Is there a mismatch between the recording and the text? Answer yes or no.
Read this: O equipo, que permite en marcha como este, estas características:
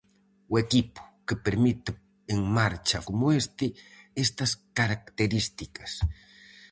no